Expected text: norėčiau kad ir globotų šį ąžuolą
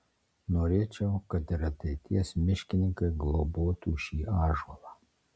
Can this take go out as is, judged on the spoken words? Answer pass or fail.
fail